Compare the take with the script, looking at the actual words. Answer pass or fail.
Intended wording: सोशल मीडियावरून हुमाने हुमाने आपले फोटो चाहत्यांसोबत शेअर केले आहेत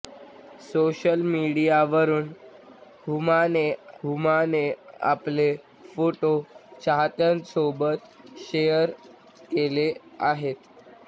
pass